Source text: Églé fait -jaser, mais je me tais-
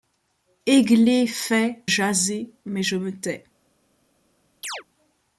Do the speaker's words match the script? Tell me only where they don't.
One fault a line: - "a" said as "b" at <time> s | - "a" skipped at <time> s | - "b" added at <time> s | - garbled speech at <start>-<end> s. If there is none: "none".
none